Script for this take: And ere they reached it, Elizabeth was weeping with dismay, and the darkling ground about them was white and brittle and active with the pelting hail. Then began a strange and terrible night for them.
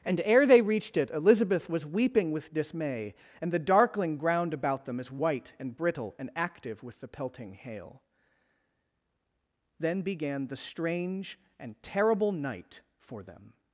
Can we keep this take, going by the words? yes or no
no